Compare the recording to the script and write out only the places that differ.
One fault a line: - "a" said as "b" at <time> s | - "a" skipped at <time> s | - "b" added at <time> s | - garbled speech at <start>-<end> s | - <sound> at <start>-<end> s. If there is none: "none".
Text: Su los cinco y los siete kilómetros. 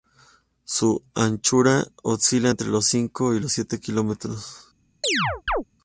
- "anchura oscila entre" added at 1.1 s
- chirp at 5.0-5.6 s